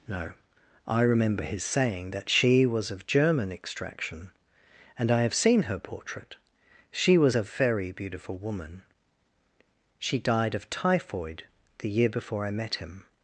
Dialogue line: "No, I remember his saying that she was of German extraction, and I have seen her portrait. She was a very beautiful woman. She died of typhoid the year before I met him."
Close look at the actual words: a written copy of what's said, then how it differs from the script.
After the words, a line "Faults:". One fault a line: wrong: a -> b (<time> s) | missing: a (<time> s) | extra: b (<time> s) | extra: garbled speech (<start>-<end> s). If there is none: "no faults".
"No, I remember his saying that she was of German extraction, and I have seen her portrait. She was a very beautiful woman. She died of typhoid the year before I met him."
Faults:
no faults